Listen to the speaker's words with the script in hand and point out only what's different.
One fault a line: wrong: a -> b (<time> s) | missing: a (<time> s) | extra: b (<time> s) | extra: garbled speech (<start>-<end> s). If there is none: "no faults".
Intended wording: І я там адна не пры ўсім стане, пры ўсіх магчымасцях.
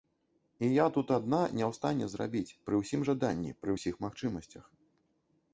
wrong: там -> тут (0.9 s)
extra: ў стане зрабіць (1.7 s)
wrong: стане -> жаданні (3.1 s)